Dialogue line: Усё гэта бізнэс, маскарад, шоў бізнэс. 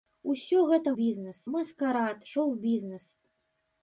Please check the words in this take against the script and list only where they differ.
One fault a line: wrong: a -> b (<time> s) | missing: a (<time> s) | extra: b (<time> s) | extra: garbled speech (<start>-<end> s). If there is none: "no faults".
no faults